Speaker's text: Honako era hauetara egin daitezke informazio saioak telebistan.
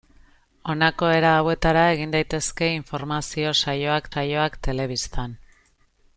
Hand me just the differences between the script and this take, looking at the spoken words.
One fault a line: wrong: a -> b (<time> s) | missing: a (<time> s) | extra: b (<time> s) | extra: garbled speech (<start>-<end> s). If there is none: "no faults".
extra: saioak (4.1 s)